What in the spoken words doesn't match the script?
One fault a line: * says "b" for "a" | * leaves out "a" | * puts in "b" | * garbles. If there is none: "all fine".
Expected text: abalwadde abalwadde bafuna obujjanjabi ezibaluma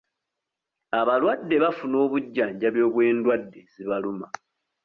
* leaves out "abalwadde"
* puts in "obw'endwadde"